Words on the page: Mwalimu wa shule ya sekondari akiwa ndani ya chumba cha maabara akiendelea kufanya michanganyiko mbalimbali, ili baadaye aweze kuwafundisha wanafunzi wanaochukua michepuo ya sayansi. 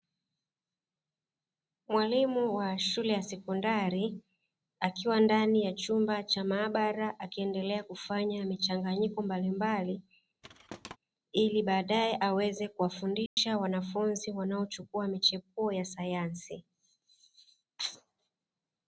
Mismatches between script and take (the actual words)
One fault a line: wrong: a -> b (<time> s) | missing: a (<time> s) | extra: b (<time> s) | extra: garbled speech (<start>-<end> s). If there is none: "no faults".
no faults